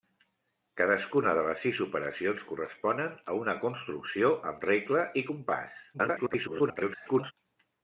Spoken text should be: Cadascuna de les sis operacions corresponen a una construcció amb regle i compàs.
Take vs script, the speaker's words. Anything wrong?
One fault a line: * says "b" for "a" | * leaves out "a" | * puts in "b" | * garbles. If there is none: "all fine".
* garbles